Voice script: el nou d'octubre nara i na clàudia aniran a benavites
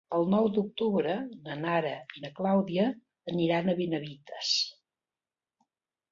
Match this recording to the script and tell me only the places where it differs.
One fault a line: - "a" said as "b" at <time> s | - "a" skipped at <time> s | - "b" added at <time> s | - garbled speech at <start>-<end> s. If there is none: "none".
- "na" added at 1.5 s